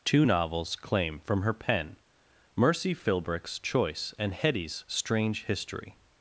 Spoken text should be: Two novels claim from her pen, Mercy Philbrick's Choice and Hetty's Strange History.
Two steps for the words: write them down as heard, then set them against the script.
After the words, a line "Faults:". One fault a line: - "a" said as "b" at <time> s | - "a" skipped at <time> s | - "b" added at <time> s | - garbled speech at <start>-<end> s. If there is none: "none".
Two novels claim from her pen, Mercy Philbrick's Choice and Hetty's Strange History.
Faults:
none